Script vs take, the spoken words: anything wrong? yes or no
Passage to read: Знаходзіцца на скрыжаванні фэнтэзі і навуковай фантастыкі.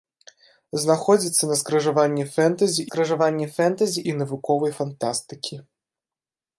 yes